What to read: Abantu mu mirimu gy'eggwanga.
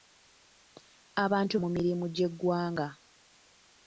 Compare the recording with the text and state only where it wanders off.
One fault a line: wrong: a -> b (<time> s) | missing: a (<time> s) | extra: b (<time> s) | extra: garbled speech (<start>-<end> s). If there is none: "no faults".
no faults